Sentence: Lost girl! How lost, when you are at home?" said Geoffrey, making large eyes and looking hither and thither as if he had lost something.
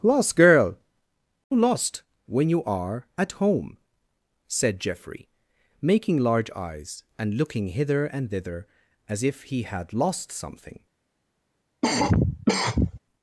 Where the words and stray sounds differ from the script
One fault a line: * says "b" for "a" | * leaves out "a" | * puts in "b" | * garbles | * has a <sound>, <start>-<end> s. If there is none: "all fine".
* leaves out "How"
* has a cough, 11.8-13.0 s